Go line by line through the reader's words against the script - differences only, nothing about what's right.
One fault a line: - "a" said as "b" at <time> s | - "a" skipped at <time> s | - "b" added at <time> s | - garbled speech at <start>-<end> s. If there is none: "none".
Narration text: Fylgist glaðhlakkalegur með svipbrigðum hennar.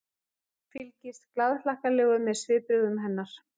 none